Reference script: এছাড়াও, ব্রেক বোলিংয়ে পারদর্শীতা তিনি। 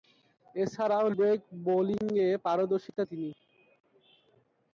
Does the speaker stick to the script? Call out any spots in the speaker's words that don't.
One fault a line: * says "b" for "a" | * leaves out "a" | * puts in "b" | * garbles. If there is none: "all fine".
all fine